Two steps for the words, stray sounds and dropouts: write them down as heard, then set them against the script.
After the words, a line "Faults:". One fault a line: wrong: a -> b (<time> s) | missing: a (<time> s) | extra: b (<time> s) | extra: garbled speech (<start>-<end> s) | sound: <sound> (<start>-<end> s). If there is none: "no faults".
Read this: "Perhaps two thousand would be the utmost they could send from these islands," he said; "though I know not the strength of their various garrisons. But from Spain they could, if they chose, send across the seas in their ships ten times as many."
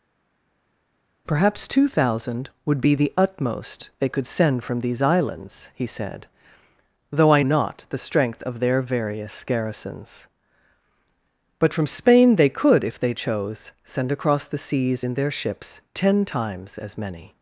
"Perhaps two thousand would be the utmost they could send from these islands," he said; "though I not the strength of their various garrisons. But from Spain they could, if they chose, send across the seas in their ships ten times as many."
Faults:
missing: know (7.4 s)